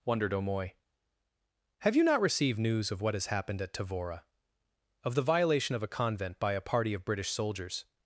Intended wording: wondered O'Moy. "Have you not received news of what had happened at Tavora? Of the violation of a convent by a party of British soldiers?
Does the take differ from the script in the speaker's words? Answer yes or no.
yes